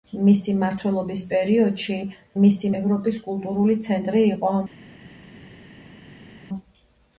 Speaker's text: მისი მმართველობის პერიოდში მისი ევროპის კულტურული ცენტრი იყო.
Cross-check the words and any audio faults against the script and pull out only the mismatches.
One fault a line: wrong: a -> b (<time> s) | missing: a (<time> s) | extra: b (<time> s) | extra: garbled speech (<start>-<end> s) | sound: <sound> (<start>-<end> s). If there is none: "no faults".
no faults